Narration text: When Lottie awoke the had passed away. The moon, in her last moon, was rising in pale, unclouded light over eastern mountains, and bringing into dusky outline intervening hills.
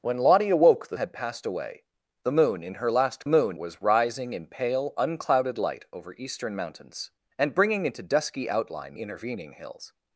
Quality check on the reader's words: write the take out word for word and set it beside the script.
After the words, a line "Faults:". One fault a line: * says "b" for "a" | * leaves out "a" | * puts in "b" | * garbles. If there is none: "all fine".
When Lottie awoke the had passed away. The moon, in her last moon, was rising in pale, unclouded light over eastern mountains, and bringing into dusky outline intervening hills.
Faults:
all fine